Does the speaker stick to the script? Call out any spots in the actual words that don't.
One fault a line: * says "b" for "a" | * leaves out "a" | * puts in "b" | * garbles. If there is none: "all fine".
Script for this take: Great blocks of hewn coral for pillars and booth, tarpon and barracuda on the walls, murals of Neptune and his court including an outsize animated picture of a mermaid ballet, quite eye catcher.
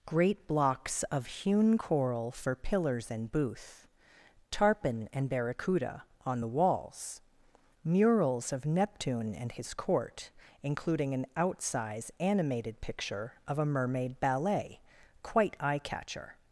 all fine